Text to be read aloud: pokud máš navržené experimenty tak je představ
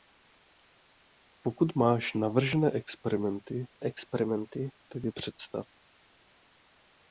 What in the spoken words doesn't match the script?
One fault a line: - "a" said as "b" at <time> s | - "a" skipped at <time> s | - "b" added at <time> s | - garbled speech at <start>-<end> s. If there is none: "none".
- "experimenty" added at 3.8 s